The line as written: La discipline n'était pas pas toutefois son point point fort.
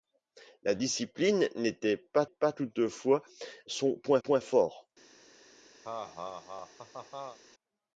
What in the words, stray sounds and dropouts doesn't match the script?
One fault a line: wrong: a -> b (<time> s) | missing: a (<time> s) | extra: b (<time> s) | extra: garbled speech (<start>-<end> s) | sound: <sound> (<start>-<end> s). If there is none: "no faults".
sound: laugh (5.8-7.4 s)